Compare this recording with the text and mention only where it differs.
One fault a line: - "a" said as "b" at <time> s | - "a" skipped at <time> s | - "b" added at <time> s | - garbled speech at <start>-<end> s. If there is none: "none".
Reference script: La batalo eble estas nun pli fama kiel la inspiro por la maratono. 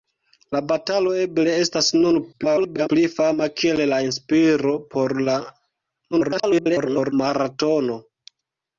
- garbled speech at 2.3-2.9 s
- garbled speech at 6.1-7.1 s